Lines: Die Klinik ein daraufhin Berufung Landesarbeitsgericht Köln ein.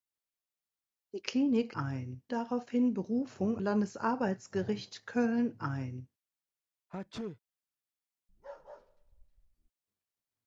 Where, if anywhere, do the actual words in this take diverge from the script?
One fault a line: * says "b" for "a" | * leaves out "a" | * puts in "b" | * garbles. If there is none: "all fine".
all fine